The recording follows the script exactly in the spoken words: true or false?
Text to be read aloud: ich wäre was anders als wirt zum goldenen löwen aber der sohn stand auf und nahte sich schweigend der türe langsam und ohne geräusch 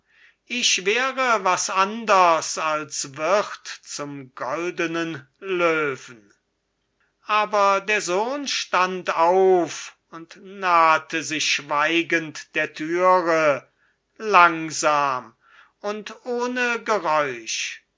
true